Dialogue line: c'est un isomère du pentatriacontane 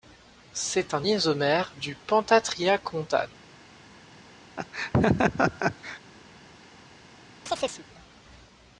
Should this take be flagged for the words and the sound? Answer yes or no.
yes